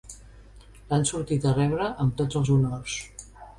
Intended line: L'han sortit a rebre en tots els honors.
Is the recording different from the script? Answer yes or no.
yes